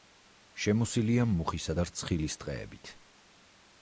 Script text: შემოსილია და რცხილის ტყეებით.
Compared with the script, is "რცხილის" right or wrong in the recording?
right